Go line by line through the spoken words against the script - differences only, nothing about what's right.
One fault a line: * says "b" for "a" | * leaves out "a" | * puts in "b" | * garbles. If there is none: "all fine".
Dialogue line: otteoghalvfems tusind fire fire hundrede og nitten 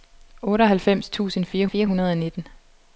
all fine